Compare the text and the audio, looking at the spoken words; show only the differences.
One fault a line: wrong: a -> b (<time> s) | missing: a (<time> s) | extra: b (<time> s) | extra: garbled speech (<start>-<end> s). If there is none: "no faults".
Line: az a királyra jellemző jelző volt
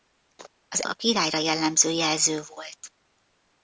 no faults